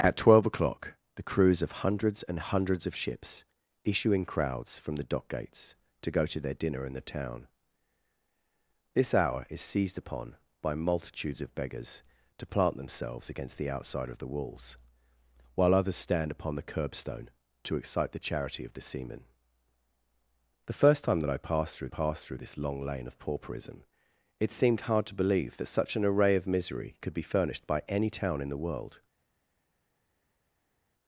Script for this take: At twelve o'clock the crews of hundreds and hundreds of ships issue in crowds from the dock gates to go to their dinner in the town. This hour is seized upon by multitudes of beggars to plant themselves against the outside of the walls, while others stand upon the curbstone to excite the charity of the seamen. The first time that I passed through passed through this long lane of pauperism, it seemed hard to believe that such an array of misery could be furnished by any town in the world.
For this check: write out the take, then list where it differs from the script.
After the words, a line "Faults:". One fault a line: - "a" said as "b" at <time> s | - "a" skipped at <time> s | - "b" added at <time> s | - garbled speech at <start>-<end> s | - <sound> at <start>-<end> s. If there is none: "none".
At twelve o'clock the crews of hundreds and hundreds of ships issue in crowds from the dock gates to go to their dinner in the town. This hour is seized upon by multitudes of beggars to plant themselves against the outside of the walls, while others stand upon the curbstone to excite the charity of the seamen. The first time that I passed through passed through this long lane of pauperism, it seemed hard to believe that such an array of misery could be furnished by any town in the world.
Faults:
none